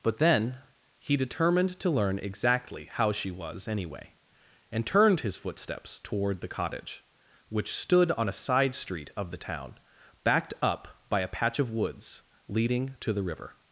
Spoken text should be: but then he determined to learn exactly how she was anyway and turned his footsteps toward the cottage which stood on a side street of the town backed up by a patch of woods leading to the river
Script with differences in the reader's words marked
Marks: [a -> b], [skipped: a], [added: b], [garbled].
but then he determined to learn exactly how she was anyway and turned his footsteps toward the cottage which stood on a side street of the town backed up by a patch of woods leading to the river